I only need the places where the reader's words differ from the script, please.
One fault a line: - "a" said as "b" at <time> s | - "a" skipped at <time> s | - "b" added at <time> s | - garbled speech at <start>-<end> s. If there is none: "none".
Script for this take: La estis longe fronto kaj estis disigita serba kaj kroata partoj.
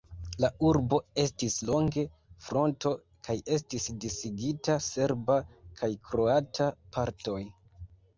- "urbo" added at 0.7 s